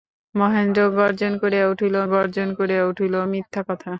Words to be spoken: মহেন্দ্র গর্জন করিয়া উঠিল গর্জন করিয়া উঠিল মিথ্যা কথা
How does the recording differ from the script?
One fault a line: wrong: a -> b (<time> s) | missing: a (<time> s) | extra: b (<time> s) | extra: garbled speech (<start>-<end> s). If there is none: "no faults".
no faults